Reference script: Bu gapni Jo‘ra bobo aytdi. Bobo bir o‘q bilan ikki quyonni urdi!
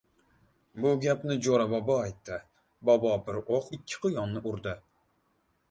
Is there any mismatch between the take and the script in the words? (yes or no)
yes